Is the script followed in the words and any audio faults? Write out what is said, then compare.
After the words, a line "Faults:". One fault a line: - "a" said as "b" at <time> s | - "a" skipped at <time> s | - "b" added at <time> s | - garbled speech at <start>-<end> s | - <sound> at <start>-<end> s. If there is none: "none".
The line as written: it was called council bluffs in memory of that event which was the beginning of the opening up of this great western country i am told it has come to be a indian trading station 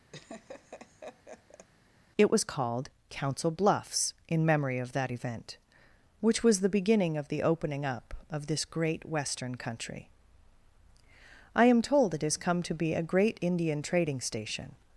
it was called council bluffs in memory of that event which was the beginning of the opening up of this great western country i am told it has come to be a great indian trading station
Faults:
- laugh at 0.1-1.7 s
- "great" added at 13.0 s